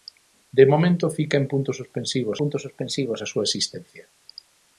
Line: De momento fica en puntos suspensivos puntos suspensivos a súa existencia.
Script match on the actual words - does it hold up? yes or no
yes